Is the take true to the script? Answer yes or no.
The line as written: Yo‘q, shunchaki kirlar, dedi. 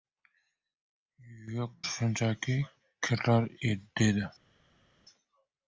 yes